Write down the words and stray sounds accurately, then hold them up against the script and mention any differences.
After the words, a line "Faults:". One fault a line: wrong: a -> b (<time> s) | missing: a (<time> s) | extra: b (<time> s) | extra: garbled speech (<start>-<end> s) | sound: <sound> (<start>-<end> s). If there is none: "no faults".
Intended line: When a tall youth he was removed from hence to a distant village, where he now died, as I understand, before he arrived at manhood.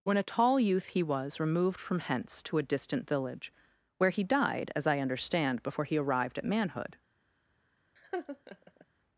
When a tall youth he was removed from hence to a distant village, where he died, as I understand, before he arrived at manhood.
Faults:
missing: now (4.2 s)
sound: laugh (8.0-8.9 s)